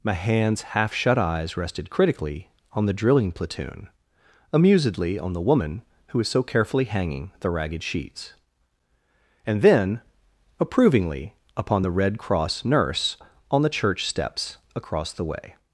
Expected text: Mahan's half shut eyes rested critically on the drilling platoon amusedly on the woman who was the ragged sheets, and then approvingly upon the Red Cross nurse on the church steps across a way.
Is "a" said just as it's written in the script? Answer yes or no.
no